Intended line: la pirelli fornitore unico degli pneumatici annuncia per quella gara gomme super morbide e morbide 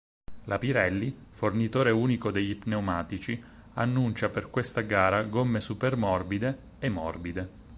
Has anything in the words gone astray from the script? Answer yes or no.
yes